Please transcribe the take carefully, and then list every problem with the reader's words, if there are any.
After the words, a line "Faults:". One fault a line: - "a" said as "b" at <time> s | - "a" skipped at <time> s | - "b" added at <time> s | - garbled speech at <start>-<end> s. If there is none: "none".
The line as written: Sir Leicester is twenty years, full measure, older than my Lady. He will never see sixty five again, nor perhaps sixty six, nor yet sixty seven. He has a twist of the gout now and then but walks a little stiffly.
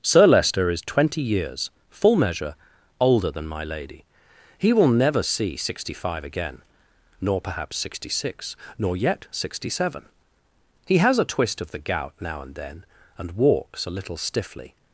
Sir Leicester is twenty years, full measure, older than my Lady. He will never see sixty five again, nor perhaps sixty six, nor yet sixty seven. He has a twist of the gout now and then and walks a little stiffly.
Faults:
- "but" said as "and" at 13.2 s